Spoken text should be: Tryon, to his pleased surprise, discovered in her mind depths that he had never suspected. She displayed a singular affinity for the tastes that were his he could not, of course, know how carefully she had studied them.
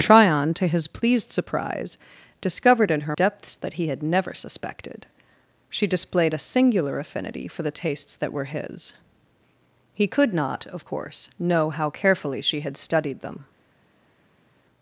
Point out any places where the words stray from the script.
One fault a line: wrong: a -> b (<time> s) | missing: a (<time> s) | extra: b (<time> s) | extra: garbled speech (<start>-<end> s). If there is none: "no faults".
missing: mind (3.1 s)